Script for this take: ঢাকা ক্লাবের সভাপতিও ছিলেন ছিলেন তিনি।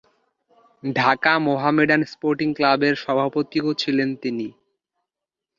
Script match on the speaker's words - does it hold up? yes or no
no